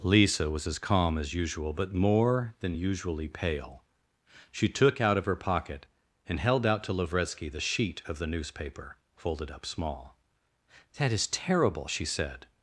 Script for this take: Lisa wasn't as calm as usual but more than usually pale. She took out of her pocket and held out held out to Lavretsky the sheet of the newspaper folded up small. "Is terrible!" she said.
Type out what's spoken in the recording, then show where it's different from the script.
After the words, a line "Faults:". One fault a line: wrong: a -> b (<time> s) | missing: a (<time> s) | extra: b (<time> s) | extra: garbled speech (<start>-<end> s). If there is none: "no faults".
Lisa was as calm as usual but more than usually pale. She took out of her pocket and held out to Lavretsky the sheet of the newspaper folded up small. "That is terrible!" she said.
Faults:
wrong: wasn't -> was (0.5 s)
missing: held out (6.8 s)
extra: That (11.0 s)